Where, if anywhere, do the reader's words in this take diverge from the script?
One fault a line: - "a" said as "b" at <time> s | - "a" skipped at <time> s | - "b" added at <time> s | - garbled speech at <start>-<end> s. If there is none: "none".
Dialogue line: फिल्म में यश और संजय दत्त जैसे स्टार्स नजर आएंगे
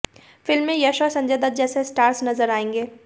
none